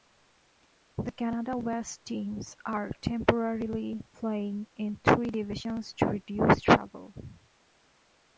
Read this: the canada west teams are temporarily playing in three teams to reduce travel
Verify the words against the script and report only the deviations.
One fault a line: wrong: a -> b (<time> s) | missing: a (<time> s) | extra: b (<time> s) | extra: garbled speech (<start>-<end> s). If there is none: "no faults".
wrong: teams -> divisions (5.3 s)